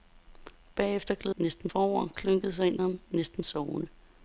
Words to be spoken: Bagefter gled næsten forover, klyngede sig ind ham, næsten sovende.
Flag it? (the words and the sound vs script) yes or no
no